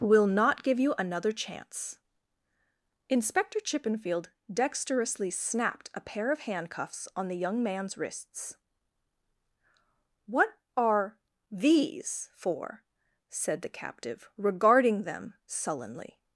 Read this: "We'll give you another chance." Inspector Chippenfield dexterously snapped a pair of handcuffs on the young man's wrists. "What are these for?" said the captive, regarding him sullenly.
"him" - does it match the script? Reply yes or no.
no